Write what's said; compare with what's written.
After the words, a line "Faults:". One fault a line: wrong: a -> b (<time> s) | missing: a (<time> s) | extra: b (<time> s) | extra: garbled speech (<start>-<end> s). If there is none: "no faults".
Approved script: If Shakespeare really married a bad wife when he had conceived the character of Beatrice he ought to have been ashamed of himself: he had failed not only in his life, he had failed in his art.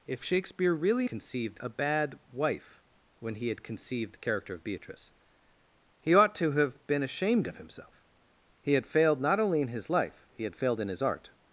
If Shakespeare really conceived a bad wife when he had conceived the character of Beatrice he ought to have been ashamed of himself: he had failed not only in his life, he had failed in his art.
Faults:
wrong: married -> conceived (1.0 s)